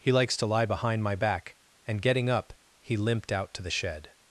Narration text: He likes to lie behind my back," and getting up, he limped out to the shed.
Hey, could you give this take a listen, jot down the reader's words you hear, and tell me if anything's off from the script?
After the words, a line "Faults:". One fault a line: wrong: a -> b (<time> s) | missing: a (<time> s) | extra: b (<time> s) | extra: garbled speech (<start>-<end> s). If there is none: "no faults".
He likes to lie behind my back," and getting up, he limped out to the shed.
Faults:
no faults